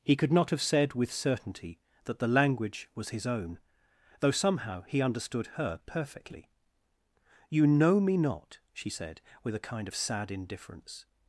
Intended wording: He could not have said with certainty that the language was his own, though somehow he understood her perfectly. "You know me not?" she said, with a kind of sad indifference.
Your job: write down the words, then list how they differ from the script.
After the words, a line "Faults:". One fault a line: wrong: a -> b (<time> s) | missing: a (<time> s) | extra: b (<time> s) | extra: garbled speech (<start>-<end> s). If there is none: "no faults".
He could not have said with certainty that the language was his own, though somehow he understood her perfectly. "You know me not?" she said, with a kind of sad indifference.
Faults:
no faults